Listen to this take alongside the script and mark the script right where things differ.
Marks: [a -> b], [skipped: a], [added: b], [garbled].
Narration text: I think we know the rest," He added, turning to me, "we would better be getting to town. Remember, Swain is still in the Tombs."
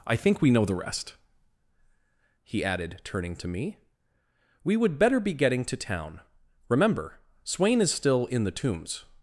I think we know the rest," He added, turning to me, "we would better be getting to town. Remember, Swain is still in the Tombs."